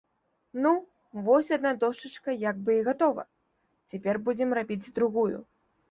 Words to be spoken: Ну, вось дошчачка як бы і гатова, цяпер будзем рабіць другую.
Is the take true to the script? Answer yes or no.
no